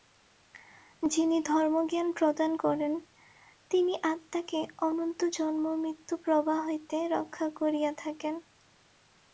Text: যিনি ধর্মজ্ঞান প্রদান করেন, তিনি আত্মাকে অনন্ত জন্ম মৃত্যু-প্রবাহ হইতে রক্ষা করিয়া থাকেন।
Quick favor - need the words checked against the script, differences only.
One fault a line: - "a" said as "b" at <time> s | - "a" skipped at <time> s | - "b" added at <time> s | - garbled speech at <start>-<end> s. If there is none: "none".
none